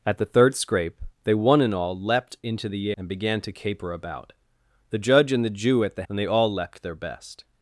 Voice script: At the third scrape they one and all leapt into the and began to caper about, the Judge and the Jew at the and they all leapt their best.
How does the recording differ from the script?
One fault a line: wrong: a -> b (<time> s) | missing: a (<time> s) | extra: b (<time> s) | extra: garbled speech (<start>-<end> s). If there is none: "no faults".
no faults